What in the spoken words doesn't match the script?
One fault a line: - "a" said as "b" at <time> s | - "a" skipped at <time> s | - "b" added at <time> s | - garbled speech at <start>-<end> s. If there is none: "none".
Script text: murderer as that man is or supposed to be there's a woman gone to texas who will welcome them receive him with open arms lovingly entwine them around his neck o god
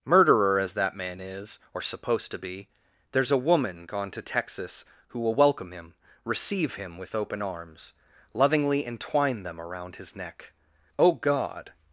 - "them" said as "him" at 5.7 s